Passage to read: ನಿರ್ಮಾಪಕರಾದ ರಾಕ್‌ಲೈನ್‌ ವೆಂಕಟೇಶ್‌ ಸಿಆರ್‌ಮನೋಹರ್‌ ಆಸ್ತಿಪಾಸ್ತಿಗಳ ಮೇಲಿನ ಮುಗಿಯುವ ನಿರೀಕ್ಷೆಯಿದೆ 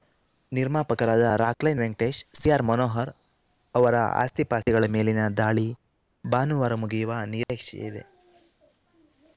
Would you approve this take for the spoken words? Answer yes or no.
no